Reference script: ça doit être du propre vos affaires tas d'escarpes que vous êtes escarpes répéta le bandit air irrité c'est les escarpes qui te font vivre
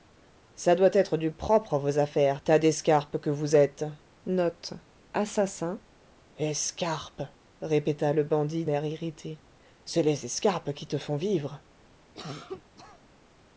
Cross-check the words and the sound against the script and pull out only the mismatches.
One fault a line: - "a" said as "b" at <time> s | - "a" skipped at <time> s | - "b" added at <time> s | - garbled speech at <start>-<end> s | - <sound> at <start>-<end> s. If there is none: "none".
- cough at 12.1-13.0 s